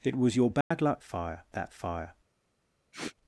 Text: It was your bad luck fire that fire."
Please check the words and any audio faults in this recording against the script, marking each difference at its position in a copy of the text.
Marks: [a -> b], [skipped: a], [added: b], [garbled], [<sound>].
It was your bad [dropout] luck fire that fire." [sniff]